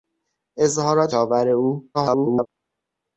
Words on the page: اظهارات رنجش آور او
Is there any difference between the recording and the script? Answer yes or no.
yes